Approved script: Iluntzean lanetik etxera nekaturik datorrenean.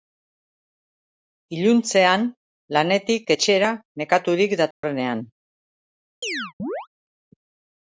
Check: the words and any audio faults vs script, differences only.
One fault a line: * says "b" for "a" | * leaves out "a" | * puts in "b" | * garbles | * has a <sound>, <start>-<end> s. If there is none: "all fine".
* has a dropout, 4.7-4.8 s
* has a chirp, 6.2-6.9 s